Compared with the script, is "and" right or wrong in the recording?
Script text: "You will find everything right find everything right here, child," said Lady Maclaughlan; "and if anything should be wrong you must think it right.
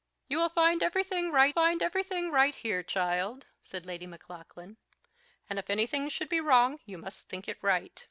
right